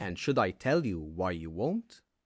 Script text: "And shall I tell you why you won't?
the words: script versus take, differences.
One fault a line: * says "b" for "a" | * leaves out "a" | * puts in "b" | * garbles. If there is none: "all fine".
* says "should" for "shall"